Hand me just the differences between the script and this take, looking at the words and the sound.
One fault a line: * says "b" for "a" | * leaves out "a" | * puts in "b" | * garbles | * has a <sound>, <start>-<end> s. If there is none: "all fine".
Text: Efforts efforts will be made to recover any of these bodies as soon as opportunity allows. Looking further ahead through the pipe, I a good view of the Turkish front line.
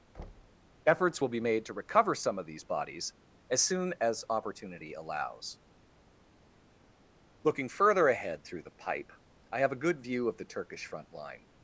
* has a thud, 0.1-0.7 s
* leaves out "efforts"
* says "some" for "any"
* puts in "have"